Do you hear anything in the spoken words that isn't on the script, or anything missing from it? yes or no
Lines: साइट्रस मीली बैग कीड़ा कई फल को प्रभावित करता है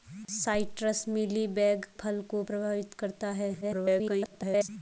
yes